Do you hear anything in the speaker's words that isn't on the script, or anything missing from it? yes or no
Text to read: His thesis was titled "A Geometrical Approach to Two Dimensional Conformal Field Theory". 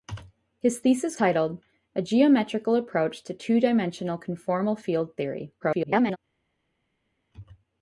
yes